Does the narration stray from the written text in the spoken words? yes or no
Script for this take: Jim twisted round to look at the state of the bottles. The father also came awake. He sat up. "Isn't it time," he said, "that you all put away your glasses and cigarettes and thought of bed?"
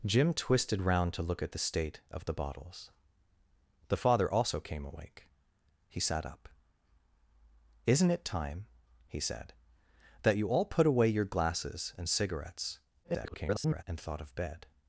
yes